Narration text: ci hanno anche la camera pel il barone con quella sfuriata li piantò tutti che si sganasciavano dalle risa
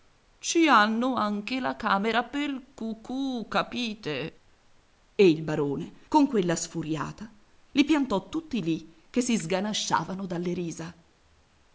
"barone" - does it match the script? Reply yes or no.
yes